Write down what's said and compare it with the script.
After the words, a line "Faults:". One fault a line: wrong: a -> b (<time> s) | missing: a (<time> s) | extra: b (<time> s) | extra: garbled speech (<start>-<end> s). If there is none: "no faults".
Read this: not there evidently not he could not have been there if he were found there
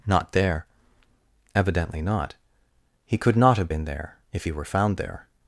not there evidently not he could not have been there if he were found there
Faults:
no faults